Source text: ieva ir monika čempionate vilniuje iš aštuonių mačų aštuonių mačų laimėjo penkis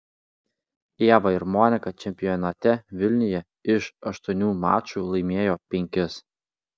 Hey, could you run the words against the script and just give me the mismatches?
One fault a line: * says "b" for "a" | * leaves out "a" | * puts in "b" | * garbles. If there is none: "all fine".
* leaves out "aštuonių mačų"